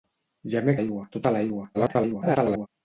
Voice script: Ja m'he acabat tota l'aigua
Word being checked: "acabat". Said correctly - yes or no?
no